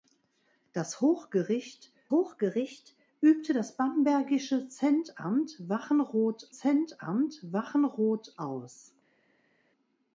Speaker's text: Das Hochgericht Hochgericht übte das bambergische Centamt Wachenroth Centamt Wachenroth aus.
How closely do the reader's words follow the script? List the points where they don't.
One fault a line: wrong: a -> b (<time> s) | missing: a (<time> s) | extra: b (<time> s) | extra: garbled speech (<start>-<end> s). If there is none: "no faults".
no faults